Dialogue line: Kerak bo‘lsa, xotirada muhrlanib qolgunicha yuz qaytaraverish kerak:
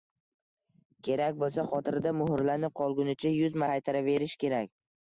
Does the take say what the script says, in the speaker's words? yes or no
yes